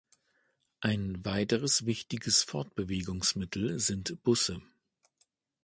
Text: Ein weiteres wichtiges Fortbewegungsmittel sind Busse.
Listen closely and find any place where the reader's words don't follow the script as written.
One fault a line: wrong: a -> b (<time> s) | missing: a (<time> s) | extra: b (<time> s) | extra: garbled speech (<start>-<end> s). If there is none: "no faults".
no faults